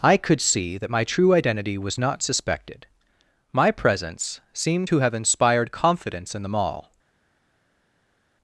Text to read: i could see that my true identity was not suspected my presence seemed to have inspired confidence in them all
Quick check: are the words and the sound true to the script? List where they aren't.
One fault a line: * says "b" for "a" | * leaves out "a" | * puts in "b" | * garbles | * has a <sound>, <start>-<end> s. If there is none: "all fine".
all fine